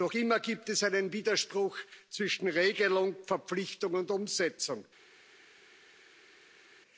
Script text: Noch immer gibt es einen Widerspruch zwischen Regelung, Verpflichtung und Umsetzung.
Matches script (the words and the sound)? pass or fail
pass